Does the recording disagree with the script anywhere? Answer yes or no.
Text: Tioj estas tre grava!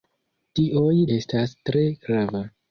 no